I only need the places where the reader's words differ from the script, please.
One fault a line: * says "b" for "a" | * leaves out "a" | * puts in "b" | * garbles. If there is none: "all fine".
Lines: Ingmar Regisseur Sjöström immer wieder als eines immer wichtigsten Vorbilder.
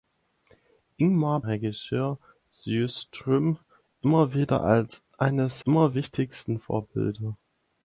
all fine